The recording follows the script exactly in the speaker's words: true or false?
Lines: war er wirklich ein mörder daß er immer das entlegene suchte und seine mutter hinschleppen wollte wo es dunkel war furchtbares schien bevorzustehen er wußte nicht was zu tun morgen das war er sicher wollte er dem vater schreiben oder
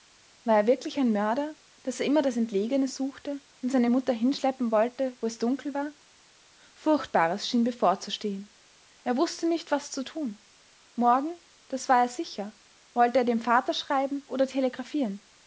true